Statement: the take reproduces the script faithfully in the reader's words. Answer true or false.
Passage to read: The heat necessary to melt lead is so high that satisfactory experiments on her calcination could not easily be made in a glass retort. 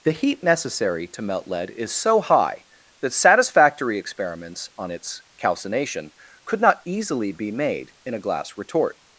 false